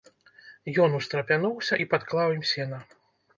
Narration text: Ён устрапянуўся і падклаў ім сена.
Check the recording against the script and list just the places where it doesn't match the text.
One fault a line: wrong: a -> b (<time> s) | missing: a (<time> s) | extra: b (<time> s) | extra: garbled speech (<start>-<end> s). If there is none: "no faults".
no faults